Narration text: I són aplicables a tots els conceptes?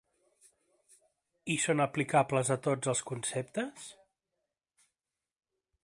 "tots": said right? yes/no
yes